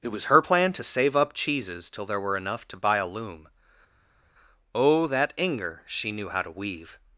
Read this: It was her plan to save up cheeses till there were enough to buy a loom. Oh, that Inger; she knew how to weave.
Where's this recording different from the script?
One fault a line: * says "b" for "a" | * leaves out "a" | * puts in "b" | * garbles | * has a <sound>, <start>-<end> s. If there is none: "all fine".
all fine